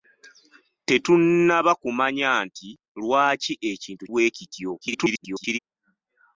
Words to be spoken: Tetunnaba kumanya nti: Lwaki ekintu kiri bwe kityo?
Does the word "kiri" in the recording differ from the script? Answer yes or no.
yes